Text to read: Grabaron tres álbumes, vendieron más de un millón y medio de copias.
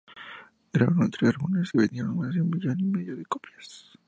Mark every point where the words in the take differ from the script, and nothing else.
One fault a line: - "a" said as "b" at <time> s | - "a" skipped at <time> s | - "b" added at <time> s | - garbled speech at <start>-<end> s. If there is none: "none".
none